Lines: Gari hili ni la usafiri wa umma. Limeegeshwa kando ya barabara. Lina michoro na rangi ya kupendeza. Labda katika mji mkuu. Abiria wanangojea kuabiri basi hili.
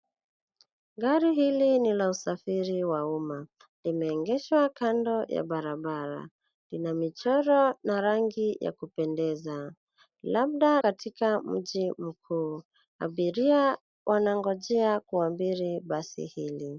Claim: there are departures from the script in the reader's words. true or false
false